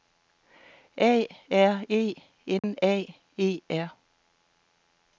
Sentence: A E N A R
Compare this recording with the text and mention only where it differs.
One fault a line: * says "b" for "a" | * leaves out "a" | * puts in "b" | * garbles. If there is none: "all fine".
* puts in "R"
* puts in "E"